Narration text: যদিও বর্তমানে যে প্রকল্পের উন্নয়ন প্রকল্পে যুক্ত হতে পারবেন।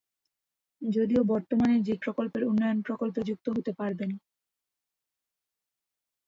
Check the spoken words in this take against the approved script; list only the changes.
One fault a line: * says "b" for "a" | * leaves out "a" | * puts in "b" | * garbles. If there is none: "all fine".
all fine